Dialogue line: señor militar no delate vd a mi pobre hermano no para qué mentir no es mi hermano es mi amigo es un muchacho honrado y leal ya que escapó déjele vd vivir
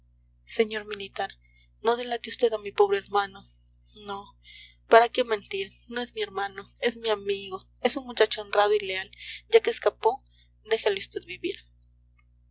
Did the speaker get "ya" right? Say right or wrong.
right